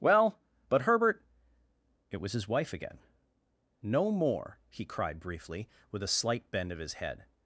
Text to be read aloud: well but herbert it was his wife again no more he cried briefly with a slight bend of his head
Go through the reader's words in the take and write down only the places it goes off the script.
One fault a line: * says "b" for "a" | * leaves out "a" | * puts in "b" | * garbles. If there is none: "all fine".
all fine